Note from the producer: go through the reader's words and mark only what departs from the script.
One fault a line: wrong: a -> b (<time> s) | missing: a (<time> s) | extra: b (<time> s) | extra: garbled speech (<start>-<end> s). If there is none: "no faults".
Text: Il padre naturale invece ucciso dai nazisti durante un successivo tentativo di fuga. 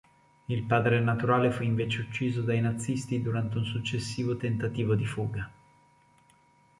extra: fu (1.5 s)